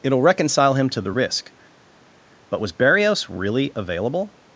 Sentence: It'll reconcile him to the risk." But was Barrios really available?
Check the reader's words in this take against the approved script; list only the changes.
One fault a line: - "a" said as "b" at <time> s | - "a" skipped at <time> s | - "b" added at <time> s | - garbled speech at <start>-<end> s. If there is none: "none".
none